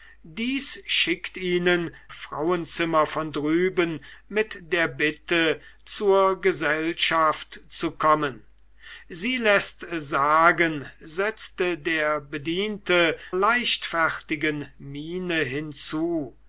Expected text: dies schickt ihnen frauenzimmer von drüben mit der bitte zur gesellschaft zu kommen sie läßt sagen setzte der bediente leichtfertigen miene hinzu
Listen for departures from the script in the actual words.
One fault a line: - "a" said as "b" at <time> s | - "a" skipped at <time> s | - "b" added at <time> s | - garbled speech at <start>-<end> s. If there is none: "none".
none